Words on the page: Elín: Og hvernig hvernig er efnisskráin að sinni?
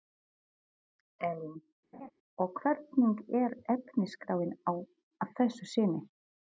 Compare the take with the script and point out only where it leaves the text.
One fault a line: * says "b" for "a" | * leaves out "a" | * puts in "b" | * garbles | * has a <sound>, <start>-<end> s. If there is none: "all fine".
* has a laugh, 1.9-2.1 s
* leaves out "hvernig"
* puts in "þessu"